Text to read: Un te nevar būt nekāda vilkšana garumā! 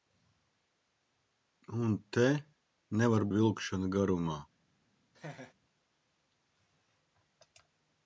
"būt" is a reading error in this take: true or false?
true